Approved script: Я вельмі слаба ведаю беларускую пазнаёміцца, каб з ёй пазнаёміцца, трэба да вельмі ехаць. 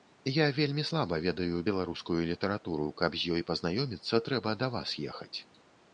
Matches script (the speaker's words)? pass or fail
fail